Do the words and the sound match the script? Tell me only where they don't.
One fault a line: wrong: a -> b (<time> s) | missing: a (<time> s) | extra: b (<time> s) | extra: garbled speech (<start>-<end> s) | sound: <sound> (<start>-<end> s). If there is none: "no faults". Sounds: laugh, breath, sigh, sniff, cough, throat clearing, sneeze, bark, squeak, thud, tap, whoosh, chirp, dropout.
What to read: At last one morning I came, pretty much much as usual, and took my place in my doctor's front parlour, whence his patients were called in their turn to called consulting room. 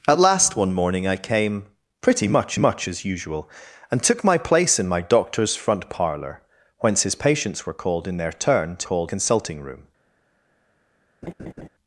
sound: laugh (11.2-11.7 s)